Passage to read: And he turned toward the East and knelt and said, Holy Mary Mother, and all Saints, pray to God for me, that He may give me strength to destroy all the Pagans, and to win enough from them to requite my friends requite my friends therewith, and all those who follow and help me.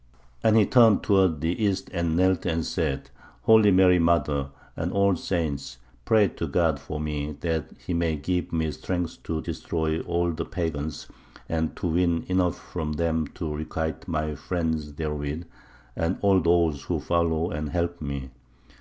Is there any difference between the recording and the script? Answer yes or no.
yes